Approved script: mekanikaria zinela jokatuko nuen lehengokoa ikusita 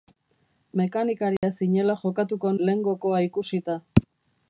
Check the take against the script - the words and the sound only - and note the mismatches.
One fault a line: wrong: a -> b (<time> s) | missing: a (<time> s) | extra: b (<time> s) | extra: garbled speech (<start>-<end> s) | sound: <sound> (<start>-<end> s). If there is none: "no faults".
sound: dropout (1.4-1.4 s)
missing: nuen (2.5 s)